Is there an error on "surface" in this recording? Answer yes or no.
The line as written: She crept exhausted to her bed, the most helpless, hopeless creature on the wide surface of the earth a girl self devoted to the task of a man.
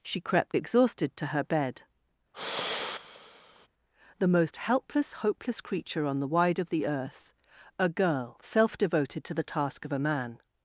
yes